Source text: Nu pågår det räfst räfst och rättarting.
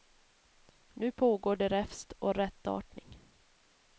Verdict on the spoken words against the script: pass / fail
fail